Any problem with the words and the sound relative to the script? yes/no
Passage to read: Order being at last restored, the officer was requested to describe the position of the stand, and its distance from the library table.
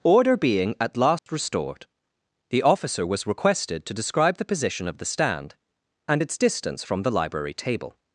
yes